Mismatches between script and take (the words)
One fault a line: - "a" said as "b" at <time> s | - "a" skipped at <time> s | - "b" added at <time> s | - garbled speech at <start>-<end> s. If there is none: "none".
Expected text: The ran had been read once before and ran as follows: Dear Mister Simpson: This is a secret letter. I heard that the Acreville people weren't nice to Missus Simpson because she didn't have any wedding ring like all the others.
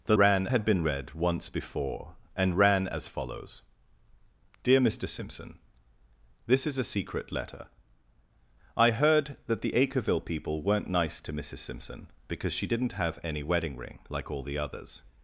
none